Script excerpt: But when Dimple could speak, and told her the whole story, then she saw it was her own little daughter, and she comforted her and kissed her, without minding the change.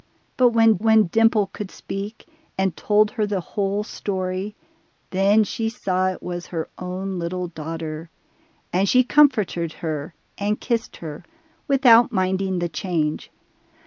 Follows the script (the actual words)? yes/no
no